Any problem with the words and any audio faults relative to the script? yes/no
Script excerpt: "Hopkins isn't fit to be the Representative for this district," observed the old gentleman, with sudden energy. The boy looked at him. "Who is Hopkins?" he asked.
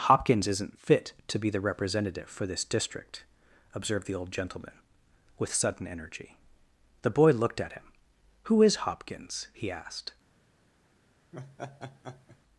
yes